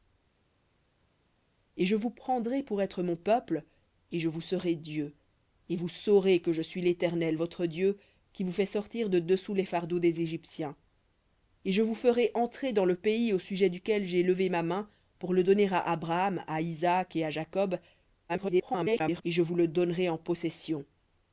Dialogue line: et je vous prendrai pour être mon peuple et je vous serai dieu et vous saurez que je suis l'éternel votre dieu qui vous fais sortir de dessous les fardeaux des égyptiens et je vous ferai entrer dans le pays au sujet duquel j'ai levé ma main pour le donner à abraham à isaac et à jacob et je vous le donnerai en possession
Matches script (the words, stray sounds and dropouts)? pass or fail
fail